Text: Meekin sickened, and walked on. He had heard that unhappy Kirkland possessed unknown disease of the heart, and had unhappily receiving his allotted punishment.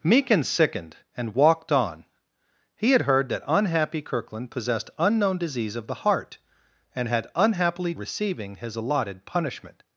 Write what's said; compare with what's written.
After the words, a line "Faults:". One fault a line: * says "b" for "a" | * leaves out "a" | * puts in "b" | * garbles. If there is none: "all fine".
Meekin sickened, and walked on. He had heard that unhappy Kirkland possessed unknown disease of the heart, and had unhappily receiving his allotted punishment.
Faults:
all fine